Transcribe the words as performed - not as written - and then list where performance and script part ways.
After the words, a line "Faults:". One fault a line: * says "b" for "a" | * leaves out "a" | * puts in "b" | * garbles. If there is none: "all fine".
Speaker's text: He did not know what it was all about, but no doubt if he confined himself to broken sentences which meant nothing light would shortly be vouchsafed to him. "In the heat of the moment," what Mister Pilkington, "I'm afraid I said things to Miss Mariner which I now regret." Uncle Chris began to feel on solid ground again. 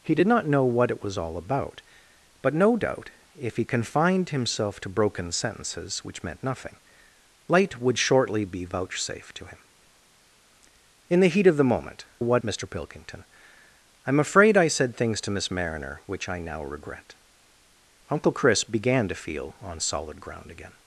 He did not know what it was all about, but no doubt if he confined himself to broken sentences which meant nothing light would shortly be vouchsafed to him. "In the heat of the moment," what Mister Pilkington, "I'm afraid I said things to Miss Mariner which I now regret." Uncle Chris began to feel on solid ground again.
Faults:
all fine